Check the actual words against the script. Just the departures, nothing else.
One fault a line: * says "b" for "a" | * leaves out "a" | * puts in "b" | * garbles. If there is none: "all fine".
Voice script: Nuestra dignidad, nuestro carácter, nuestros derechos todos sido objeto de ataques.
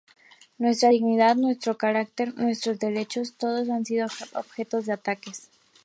* puts in "han"